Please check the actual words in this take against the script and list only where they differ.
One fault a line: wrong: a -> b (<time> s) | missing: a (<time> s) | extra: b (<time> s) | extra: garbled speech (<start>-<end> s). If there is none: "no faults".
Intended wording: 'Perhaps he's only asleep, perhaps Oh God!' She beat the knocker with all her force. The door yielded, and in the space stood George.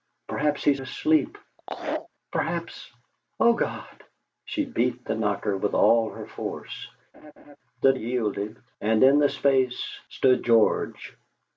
missing: only (0.8 s)
missing: door (7.9 s)